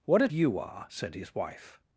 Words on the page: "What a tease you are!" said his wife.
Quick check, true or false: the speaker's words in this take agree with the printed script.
false